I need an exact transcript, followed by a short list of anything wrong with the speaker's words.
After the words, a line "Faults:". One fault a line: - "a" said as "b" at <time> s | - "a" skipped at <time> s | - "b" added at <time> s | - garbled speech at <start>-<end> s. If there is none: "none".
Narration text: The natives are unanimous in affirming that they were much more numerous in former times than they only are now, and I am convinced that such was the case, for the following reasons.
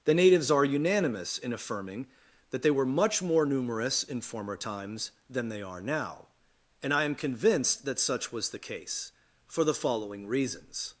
The natives are unanimous in affirming that they were much more numerous in former times than they are now, and I am convinced that such was the case, for the following reasons.
Faults:
- "only" skipped at 5.6 s